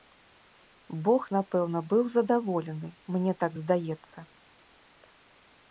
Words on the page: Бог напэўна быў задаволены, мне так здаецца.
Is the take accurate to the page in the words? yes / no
yes